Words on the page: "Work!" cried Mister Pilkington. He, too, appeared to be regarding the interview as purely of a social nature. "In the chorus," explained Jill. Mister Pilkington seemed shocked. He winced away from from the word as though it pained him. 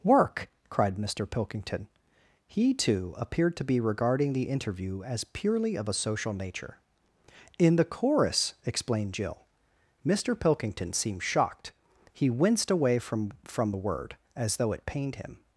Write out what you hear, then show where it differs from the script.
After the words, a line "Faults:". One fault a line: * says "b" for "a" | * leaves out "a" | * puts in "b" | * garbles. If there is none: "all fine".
"Work!" cried Mister Pilkington. He, too, appeared to be regarding the interview as purely of a social nature. "In the chorus," explained Jill. Mister Pilkington seemed shocked. He winced away from from the word as though it pained him.
Faults:
all fine